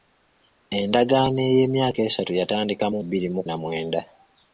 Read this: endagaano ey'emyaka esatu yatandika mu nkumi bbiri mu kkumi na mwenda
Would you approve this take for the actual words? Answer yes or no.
no